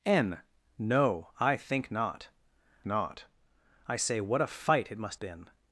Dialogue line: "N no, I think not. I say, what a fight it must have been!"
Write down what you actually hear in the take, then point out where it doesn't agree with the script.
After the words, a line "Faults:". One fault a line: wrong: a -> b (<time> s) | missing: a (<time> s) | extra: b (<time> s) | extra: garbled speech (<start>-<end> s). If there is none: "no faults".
"N no, I think not not. I say, what a fight it must been!"
Faults:
extra: not (2.9 s)
missing: have (5.2 s)